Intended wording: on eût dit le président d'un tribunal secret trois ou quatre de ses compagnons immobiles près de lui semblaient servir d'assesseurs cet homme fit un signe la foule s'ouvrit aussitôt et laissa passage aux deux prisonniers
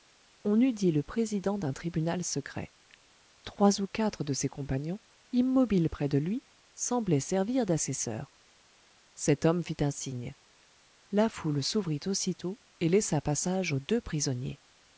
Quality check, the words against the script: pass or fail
pass